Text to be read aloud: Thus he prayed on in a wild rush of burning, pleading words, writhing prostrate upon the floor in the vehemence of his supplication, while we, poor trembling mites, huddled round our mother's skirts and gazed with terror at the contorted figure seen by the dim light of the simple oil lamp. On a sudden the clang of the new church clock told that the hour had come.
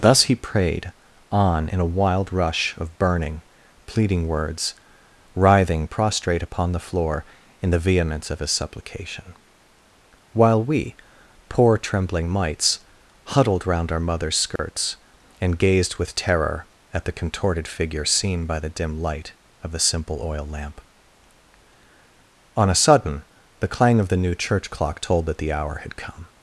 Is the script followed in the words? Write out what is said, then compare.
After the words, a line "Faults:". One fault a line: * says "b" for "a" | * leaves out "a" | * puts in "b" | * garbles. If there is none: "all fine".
Thus he prayed on in a wild rush of burning, pleading words, writhing prostrate upon the floor in the vehemence of his supplication, while we, poor trembling mites, huddled round our mother's skirts and gazed with terror at the contorted figure seen by the dim light of the simple oil lamp. On a sudden the clang of the new church clock told that the hour had come.
Faults:
all fine